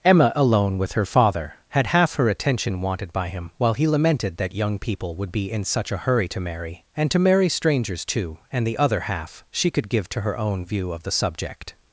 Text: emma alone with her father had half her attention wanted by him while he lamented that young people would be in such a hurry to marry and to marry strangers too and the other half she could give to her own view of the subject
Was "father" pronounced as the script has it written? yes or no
yes